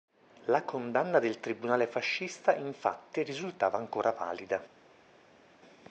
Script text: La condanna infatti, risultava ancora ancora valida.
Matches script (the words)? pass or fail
fail